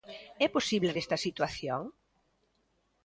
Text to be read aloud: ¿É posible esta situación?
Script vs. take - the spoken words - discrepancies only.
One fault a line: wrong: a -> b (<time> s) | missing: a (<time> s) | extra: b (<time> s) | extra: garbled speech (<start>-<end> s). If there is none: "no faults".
no faults